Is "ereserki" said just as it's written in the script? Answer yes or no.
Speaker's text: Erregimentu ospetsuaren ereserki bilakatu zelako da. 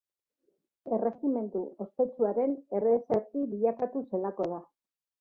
yes